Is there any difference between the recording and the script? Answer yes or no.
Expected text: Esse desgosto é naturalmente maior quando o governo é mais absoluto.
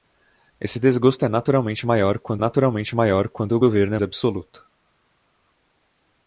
yes